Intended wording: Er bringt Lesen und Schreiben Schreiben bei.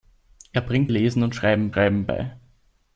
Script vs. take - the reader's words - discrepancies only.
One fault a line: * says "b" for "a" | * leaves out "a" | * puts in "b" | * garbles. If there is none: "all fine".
all fine